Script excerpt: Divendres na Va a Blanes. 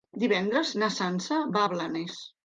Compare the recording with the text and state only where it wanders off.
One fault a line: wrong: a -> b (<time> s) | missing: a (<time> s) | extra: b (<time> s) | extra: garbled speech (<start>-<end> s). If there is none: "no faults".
extra: Sança (1.0 s)